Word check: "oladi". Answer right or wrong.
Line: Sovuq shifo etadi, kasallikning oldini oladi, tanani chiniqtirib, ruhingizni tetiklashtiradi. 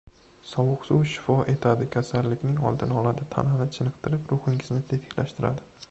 right